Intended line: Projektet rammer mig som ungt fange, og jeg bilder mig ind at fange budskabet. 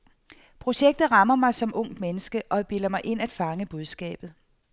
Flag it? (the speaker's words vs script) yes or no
yes